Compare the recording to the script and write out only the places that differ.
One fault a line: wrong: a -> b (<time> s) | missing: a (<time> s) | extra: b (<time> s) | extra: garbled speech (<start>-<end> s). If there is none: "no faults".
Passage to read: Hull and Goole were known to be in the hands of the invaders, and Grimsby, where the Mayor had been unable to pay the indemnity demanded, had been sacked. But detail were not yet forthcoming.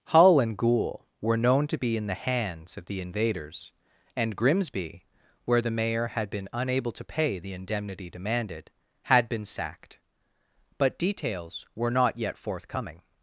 wrong: detail -> details (11.0 s)